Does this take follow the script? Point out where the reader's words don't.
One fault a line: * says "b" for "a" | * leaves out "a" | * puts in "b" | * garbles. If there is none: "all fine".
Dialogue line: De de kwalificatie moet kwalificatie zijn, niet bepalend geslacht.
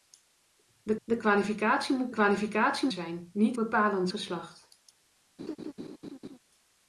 all fine